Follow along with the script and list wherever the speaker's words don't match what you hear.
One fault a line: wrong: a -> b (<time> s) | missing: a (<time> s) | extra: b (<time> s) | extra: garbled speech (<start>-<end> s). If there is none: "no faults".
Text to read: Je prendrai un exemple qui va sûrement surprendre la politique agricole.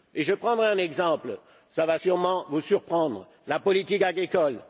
extra: vous (2.5 s)